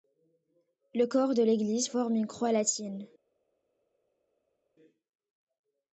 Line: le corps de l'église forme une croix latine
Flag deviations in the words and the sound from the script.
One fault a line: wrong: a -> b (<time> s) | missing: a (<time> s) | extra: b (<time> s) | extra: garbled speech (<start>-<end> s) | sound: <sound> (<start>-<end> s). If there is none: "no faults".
no faults